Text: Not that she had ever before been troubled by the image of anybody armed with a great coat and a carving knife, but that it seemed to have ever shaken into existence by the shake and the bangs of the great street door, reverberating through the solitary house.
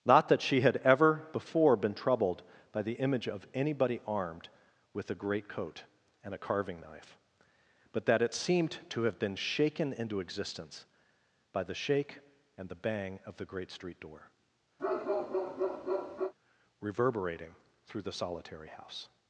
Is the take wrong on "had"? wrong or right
right